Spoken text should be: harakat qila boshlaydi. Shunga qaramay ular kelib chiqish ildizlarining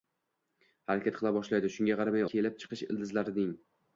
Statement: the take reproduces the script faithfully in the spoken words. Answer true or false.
false